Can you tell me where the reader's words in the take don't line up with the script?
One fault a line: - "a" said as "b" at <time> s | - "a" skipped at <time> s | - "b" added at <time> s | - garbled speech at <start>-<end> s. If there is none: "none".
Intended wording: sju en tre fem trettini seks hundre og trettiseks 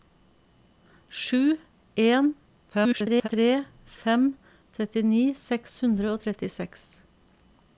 - garbled speech at 2.7-3.3 s